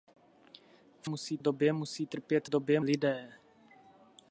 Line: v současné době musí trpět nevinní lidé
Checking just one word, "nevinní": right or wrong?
wrong